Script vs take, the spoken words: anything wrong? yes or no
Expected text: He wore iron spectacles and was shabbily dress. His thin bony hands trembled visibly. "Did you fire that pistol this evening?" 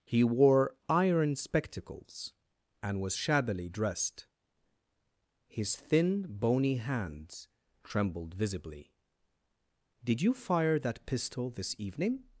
yes